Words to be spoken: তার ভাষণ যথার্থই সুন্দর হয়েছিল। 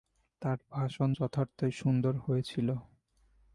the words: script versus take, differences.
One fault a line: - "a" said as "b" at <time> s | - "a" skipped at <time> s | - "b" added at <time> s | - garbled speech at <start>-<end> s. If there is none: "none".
none